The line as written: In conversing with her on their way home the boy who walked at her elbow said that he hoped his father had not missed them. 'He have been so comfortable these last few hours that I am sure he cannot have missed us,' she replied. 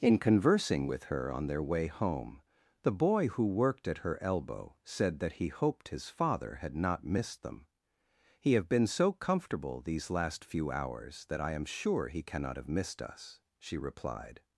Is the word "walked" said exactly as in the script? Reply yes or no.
no